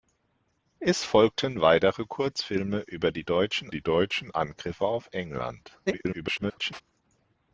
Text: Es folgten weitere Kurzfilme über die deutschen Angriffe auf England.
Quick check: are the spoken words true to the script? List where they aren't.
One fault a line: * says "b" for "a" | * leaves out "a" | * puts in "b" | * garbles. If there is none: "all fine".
* puts in "die deutschen"
* garbles